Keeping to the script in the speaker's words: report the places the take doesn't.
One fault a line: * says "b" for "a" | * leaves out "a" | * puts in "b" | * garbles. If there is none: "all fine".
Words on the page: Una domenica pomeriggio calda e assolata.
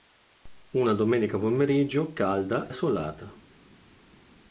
* leaves out "e"